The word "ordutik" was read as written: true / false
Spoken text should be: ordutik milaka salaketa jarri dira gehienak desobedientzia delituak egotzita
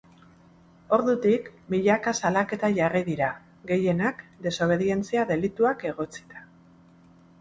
true